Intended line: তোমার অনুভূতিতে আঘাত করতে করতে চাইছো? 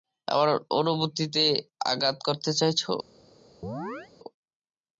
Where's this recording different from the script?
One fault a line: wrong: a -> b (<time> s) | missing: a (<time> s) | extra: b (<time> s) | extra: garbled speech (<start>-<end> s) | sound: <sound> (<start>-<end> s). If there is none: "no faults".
wrong: তোমার -> আমার (0.3 s)
missing: করতে (2.5 s)
sound: chirp (3.6-4.1 s)